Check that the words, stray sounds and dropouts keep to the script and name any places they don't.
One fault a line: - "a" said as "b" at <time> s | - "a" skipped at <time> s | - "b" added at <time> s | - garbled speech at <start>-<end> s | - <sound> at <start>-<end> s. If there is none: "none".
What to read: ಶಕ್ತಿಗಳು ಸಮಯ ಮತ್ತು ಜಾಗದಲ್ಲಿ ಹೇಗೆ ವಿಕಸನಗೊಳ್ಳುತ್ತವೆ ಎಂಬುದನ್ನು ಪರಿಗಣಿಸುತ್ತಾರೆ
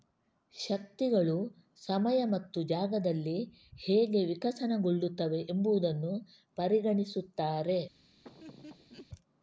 - laugh at 8.2-9.1 s